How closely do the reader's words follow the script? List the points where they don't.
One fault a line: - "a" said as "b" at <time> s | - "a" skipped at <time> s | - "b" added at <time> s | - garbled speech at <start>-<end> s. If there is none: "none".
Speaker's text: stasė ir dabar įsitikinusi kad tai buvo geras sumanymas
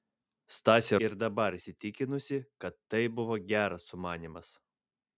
none